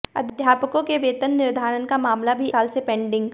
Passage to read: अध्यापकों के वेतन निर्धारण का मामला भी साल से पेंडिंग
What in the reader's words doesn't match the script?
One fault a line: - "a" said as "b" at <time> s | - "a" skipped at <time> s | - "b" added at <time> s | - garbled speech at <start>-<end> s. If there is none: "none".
none